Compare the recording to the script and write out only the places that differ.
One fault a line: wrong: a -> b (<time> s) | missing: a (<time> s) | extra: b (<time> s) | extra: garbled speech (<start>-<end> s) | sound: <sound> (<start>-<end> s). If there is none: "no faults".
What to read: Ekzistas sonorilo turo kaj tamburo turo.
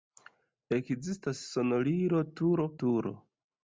missing: kaj tamburo (2.7 s)